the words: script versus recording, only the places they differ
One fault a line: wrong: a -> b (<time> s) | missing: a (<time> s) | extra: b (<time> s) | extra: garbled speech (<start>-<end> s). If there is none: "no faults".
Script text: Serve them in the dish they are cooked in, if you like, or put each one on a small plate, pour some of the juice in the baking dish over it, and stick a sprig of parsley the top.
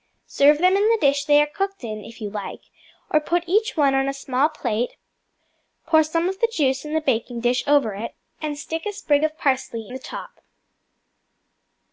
no faults